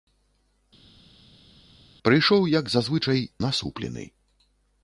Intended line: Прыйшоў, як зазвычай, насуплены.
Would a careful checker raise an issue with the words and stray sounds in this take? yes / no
no